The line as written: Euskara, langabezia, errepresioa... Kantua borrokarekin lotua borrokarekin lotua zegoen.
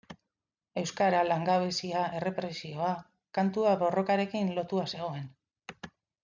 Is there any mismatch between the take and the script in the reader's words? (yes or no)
yes